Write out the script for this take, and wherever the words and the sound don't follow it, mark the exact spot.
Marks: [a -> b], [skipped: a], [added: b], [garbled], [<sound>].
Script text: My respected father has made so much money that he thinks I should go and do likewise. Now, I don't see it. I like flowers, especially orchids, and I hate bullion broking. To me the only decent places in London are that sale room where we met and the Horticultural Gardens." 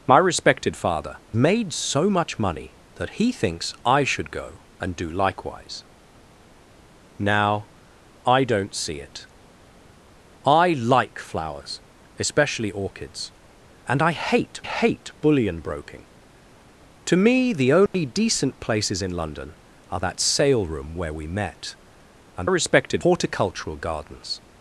My respected father [skipped: has] made so much money that he thinks I should go and do likewise. Now, I don't see it. I like flowers, especially orchids, and I hate [added: hate] bullion broking. To me the only [dropout] decent places in London are that sale room where we met and [the -> respected] Horticultural Gardens."